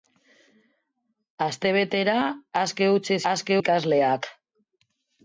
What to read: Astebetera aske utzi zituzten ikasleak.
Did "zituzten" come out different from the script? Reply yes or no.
yes